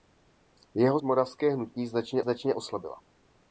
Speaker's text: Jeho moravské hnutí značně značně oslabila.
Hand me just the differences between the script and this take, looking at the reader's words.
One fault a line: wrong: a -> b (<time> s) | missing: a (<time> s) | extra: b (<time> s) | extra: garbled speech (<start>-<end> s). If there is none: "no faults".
no faults